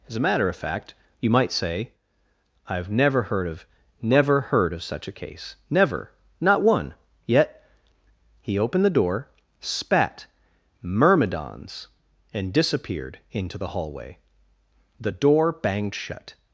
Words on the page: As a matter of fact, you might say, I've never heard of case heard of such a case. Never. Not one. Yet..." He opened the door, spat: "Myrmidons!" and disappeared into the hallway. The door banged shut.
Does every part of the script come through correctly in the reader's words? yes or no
no